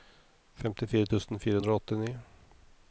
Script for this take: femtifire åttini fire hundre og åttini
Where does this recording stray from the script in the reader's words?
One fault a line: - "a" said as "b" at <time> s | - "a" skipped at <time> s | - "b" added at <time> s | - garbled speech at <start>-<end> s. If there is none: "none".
- "åttini" said as "tusen" at 1.1 s